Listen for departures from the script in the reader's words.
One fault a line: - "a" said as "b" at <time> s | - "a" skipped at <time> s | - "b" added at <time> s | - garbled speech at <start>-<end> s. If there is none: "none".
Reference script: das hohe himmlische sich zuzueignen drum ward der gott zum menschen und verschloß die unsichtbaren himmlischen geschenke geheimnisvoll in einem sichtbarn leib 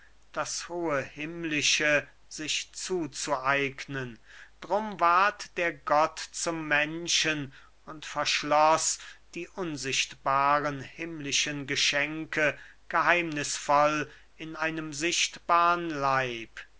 none